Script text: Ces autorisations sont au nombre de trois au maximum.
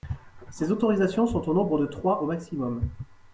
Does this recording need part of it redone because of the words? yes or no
no